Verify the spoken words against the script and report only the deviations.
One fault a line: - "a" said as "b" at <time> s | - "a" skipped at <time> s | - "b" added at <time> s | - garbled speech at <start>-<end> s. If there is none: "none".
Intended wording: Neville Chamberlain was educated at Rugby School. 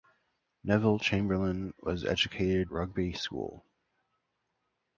- "at" skipped at 2.7 s